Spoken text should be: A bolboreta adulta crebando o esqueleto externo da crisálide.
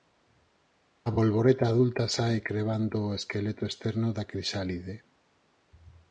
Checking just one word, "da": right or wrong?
right